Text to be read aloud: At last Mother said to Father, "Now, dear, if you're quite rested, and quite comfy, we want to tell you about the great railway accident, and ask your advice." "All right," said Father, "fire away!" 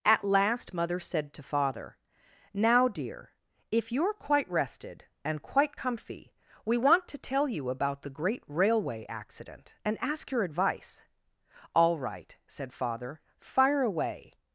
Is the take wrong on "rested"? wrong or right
right